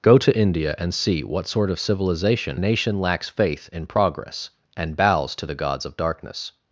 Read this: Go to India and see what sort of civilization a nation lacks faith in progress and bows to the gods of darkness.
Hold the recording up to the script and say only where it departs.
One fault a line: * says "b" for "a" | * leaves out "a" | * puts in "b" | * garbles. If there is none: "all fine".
all fine